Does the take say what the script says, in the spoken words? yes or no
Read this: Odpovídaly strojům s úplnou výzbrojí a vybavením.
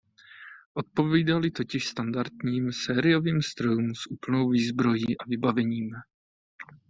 no